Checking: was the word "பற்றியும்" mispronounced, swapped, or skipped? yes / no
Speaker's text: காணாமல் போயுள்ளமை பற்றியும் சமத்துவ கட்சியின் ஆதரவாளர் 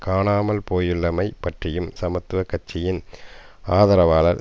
no